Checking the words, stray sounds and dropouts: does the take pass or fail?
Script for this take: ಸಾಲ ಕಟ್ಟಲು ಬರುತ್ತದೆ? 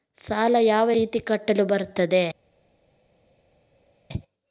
fail